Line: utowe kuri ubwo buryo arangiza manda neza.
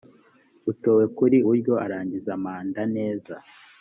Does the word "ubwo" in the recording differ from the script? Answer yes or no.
yes